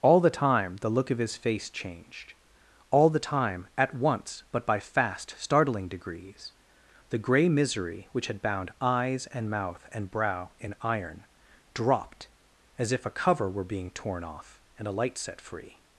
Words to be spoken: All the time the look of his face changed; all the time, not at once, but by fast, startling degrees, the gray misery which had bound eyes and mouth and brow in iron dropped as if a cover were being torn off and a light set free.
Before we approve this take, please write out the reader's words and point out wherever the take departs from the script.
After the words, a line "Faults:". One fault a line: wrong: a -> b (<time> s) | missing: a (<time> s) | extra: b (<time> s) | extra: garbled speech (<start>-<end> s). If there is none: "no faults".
All the time the look of his face changed; all the time, at once, but by fast, startling degrees, the gray misery which had bound eyes and mouth and brow in iron dropped as if a cover were being torn off and a light set free.
Faults:
missing: not (3.7 s)